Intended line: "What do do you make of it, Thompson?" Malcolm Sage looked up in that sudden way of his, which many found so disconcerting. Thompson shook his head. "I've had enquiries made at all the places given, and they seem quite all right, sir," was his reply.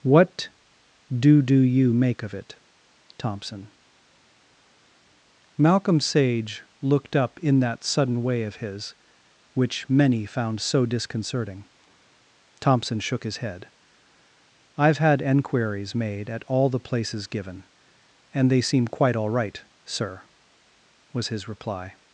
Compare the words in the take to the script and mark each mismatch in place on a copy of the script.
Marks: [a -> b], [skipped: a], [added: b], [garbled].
"What do do you make of it, Thompson?" Malcolm Sage looked up in that sudden way of his, which many found so disconcerting. Thompson shook his head. "I've had enquiries made at all the places given, and they seem quite all right, sir," was his reply.